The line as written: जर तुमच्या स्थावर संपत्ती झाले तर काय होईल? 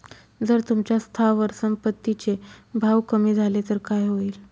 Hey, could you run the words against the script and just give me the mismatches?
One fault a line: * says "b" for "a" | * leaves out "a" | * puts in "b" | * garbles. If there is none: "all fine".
* puts in "चे भाव कमी"